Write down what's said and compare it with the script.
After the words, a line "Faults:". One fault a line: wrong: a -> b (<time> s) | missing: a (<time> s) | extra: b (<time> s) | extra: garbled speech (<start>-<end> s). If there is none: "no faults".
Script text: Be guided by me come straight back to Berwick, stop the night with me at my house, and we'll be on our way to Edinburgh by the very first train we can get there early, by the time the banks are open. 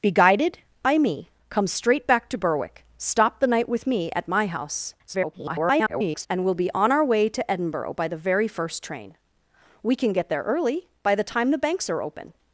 Be guided by me come straight back to Berwick, stop the night with me at my house, [garbled] and we'll be on our way to Edinburgh by the very first train we can get there early, by the time the banks are open.
Faults:
extra: garbled speech (5.1-6.3 s)